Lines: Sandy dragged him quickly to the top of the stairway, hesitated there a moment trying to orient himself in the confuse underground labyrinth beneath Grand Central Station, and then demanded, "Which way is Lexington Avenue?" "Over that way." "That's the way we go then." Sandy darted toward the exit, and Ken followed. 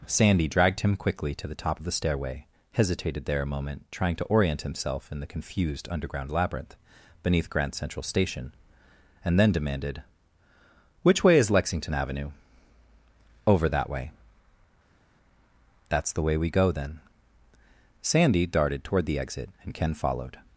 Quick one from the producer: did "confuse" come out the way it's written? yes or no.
no